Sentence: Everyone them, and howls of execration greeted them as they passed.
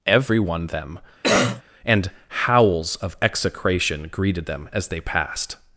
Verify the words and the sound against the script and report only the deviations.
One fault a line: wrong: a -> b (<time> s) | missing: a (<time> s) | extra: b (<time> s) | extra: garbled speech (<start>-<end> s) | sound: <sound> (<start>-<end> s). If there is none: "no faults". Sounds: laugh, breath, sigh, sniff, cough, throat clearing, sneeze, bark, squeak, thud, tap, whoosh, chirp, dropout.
sound: cough (1.2-1.6 s)